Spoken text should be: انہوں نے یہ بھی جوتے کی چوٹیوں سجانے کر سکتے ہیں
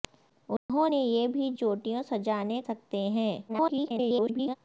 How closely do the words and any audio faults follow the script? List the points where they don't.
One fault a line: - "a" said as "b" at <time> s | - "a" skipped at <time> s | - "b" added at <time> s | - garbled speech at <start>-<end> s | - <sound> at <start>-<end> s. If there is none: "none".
- dropout at 0.6-0.7 s
- "جوتے کی" skipped at 1.5 s
- "کر" skipped at 2.6 s
- garbled speech at 3.5-4.6 s